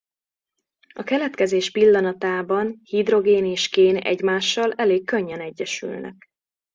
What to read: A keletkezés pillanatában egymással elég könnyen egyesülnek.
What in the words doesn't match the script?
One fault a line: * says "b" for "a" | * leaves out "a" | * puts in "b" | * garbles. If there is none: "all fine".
* puts in "hidrogén és kén"